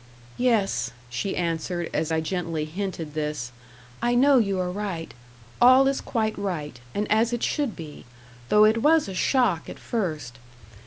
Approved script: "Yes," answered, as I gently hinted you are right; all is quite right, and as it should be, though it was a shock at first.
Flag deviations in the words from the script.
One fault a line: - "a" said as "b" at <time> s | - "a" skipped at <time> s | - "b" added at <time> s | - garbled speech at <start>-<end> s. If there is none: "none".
- "she" added at 1.1 s
- "this I know" added at 3.1 s